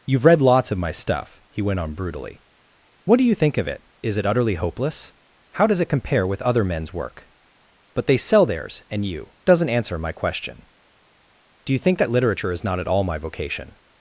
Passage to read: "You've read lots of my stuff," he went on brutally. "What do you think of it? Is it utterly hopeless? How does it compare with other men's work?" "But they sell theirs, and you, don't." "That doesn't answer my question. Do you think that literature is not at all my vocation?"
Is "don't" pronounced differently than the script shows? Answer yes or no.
yes